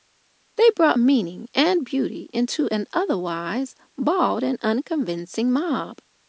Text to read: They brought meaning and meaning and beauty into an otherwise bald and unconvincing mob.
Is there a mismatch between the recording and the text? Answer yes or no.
yes